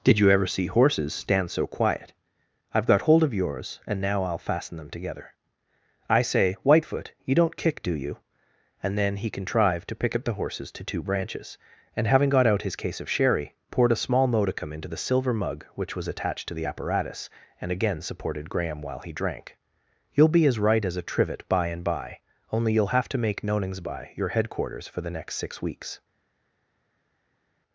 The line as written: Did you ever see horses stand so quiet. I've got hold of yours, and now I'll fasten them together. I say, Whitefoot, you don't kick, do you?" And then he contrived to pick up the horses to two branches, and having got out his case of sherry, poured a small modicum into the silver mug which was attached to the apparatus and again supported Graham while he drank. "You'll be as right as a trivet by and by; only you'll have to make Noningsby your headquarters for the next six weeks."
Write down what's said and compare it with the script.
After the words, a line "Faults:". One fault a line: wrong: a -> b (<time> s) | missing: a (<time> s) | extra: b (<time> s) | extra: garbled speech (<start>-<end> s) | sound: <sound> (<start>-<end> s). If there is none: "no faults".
Did you ever see horses stand so quiet. I've got hold of yours, and now I'll fasten them together. I say, Whitefoot, you don't kick, do you?" And then he contrived to pick up the horses to two branches, and having got out his case of sherry, poured a small modicum into the silver mug which was attached to the apparatus and again supported Graham while he drank. "You'll be as right as a trivet by and by; only you'll have to make Noningsby your headquarters for the next six weeks."
Faults:
no faults